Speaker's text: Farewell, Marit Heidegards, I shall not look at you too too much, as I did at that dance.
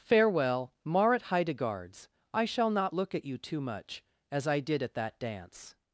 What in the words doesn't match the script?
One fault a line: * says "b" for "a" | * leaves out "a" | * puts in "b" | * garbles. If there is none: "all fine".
* leaves out "too"